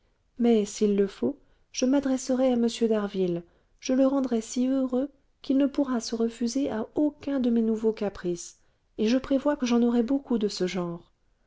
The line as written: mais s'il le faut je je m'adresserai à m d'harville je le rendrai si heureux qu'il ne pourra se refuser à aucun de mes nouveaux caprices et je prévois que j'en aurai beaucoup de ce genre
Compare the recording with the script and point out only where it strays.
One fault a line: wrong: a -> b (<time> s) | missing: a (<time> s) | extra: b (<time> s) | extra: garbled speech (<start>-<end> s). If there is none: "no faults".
missing: je (1.9 s)